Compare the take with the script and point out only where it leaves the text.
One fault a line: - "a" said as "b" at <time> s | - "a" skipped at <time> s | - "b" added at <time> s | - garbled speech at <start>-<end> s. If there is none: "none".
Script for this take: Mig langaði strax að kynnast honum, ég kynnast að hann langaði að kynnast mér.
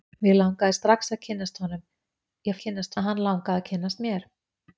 none